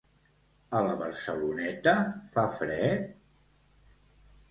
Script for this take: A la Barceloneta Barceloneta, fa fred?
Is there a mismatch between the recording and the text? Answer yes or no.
yes